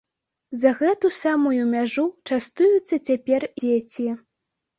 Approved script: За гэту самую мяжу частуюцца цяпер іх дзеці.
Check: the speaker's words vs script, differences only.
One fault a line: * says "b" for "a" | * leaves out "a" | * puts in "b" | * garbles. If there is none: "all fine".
* leaves out "іх"